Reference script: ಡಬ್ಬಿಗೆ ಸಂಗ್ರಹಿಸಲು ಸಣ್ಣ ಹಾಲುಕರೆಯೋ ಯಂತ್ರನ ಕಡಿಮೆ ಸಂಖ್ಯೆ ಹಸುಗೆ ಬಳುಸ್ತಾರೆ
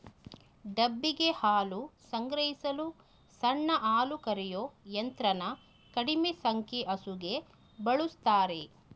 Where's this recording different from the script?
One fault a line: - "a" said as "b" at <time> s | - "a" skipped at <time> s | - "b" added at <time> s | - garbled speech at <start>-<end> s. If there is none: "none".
- "ಹಾಲು" added at 1.4 s